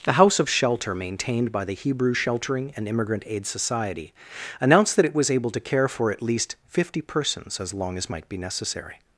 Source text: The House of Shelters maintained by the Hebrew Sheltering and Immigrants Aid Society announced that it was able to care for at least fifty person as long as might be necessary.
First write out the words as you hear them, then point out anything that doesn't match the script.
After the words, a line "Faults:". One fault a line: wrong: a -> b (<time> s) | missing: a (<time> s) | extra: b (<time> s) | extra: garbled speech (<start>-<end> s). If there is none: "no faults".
The House of Shelter maintained by the Hebrew Sheltering and Immigrant Aid Society announced that it was able to care for at least fifty persons as long as might be necessary.
Faults:
wrong: Shelters -> Shelter (0.5 s)
wrong: Immigrants -> Immigrant (2.9 s)
wrong: person -> persons (7.0 s)